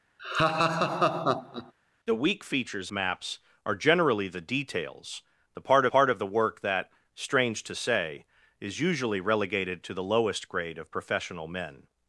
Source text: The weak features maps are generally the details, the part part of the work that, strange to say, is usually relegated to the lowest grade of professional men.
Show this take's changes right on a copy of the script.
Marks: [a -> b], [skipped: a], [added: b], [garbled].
The weak features maps are generally the details, the part part of the work that, strange to say, is usually relegated to the lowest grade of professional men.